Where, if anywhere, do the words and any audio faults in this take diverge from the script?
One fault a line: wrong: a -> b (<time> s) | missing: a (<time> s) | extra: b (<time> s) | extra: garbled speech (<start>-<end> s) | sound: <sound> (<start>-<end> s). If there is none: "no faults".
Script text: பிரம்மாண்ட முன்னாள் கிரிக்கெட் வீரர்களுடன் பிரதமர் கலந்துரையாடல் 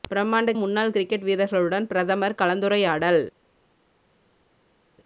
no faults